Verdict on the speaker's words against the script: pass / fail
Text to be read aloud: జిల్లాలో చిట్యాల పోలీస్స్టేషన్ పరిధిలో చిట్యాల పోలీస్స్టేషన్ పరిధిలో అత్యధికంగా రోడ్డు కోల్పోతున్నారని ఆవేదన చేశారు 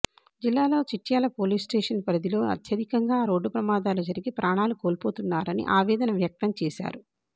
fail